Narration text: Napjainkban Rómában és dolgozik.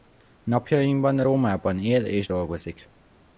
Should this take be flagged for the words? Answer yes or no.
yes